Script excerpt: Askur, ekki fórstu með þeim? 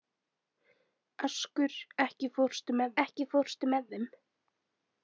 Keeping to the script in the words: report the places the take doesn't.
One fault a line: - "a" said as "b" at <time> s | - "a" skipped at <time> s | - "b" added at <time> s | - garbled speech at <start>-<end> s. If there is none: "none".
- "ekki fórstu með" added at 3.0 s